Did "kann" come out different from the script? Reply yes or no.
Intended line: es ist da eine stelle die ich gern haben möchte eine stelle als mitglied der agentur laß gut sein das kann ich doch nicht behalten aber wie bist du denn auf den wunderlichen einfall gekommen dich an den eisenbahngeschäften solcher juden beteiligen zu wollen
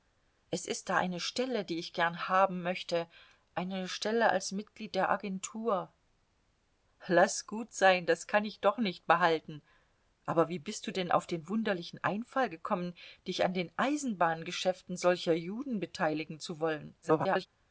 no